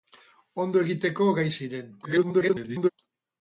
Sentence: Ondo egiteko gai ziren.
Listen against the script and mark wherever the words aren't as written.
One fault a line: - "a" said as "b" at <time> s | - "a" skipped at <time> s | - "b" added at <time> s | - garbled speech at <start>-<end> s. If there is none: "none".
- garbled speech at 2.0-2.9 s